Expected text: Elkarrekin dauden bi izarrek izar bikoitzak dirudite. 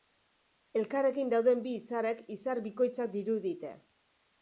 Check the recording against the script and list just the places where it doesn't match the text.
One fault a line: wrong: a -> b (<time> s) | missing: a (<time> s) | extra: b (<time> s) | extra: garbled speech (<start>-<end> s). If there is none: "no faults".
no faults